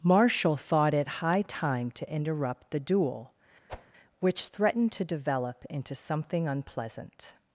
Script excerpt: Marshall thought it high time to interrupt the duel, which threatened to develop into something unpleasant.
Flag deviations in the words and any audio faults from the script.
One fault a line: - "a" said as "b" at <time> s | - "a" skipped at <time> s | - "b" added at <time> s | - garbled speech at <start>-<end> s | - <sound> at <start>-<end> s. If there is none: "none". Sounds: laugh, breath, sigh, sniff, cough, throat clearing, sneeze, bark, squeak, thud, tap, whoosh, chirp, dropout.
- whoosh at 3.7-3.9 s